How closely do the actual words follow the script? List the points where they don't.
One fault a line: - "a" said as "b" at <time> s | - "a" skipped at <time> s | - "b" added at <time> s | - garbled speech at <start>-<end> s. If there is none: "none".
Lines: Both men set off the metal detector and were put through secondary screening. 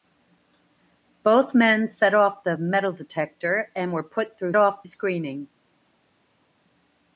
- "secondary" said as "off" at 4.6 s